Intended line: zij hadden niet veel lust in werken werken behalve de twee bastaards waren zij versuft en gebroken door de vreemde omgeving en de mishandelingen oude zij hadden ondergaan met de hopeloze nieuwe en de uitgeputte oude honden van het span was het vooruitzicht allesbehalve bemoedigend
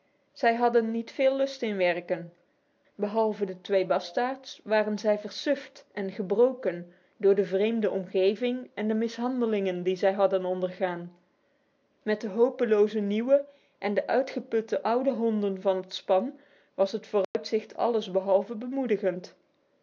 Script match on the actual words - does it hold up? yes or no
no